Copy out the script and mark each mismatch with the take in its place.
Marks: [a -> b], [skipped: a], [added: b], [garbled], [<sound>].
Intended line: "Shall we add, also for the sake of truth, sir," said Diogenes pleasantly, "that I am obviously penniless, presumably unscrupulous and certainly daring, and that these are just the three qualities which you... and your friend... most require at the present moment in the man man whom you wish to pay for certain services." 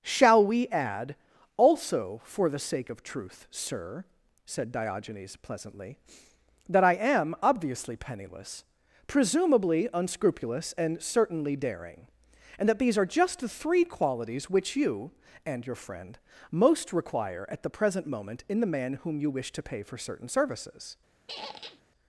"Shall we add, also for the sake of truth, sir," said Diogenes pleasantly, "that I am obviously penniless, presumably unscrupulous and certainly daring, and that these are just the three qualities which you... and your friend... most require at the present moment in the man [skipped: man] whom you wish to pay for certain services." [squeak]